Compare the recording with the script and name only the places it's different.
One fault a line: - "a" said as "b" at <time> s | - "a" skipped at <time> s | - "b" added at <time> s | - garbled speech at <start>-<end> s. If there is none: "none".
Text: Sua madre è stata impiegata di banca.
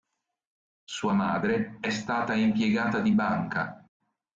none